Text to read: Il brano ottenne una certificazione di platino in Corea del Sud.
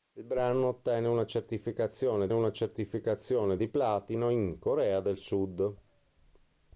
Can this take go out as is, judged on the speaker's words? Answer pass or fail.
fail